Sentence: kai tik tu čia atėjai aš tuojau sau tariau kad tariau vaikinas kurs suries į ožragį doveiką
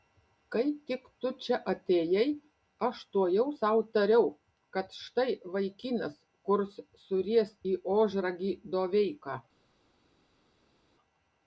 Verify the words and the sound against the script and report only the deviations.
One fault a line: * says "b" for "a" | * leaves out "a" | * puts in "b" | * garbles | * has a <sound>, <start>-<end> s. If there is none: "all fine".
* says "štai" for "tariau"